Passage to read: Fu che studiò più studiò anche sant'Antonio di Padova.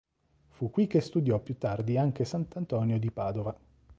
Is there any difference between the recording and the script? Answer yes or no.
yes